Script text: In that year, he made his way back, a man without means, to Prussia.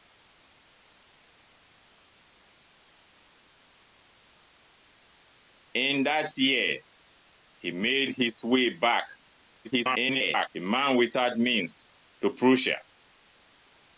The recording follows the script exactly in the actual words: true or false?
false